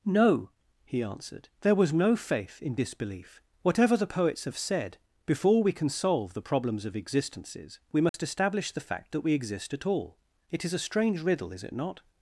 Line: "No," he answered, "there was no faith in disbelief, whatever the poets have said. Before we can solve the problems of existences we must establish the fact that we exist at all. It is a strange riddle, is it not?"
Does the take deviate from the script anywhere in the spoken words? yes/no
no